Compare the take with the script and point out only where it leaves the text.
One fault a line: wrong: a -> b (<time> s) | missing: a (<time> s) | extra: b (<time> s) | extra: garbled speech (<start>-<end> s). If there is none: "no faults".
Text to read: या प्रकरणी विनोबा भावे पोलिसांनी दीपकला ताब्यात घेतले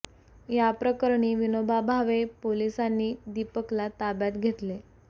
no faults